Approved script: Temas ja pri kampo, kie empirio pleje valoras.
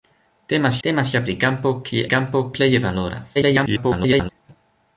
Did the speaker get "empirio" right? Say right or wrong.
wrong